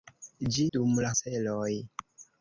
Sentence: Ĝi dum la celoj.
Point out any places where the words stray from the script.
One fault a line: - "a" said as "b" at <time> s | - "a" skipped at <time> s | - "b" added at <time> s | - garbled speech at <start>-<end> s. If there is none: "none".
none